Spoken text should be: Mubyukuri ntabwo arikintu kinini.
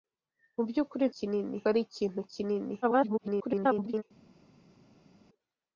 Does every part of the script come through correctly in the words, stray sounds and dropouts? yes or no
no